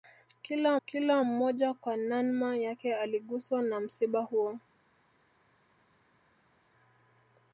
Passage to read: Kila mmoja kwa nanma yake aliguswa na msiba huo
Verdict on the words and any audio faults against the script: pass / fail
fail